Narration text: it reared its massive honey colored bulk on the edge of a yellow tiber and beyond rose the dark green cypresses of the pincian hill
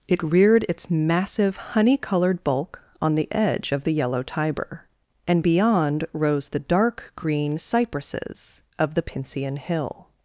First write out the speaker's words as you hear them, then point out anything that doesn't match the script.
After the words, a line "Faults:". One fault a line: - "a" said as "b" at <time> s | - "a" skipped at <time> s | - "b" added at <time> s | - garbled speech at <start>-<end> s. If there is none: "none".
it reared its massive honey colored bulk on the edge of the yellow tiber and beyond rose the dark green cypresses of the pincian hill
Faults:
- "a" said as "the" at 3.8 s